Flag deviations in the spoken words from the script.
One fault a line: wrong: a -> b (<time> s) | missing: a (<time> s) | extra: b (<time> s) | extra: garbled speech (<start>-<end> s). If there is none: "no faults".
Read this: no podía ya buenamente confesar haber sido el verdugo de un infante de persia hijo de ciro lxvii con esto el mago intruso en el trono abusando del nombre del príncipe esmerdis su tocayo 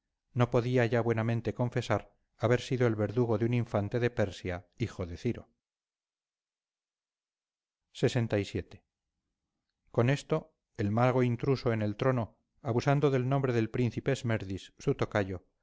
no faults